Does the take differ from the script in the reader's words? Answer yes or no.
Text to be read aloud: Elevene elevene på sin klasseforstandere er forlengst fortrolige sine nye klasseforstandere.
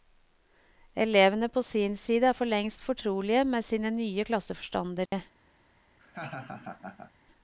yes